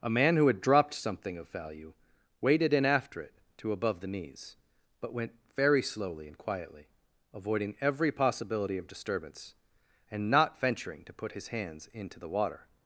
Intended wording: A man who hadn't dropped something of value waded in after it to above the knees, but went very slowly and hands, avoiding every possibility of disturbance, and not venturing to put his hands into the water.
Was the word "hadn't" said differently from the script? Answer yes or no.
yes